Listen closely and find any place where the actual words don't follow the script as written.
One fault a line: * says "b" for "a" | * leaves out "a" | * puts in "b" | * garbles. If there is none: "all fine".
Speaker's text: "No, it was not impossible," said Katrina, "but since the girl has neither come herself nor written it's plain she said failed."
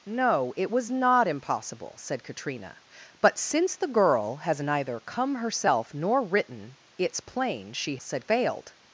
all fine